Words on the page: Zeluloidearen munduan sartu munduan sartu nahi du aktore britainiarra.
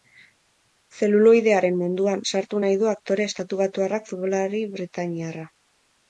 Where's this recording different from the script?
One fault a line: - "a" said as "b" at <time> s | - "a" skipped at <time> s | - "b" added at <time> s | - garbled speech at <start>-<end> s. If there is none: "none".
- "munduan sartu" skipped at 2.6 s
- "estatubatuarrak futbolari" added at 3.3 s